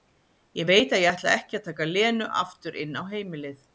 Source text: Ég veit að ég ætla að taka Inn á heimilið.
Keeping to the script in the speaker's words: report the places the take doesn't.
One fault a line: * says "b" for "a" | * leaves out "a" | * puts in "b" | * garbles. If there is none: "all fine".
* puts in "ekki"
* puts in "Lenu aftur"